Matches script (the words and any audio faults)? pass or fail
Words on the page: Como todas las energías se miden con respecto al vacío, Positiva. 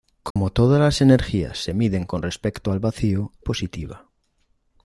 fail